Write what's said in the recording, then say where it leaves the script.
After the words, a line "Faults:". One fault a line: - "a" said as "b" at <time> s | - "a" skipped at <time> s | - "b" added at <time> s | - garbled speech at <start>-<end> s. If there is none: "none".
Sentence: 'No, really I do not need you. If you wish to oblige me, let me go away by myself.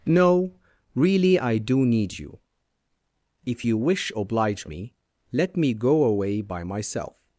'No, really I do need you. If you wish oblige me, let me go away by myself.
Faults:
- "not" skipped at 1.9 s
- "to" skipped at 4.1 s